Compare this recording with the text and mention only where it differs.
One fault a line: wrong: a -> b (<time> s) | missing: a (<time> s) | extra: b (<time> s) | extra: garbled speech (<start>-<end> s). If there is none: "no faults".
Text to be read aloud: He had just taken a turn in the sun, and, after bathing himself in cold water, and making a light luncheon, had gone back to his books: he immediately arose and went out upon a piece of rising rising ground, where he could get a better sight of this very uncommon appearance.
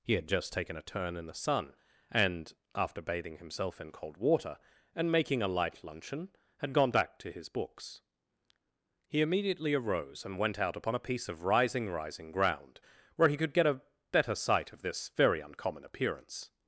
no faults